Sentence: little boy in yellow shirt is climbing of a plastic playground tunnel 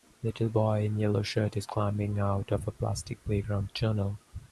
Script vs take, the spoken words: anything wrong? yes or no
yes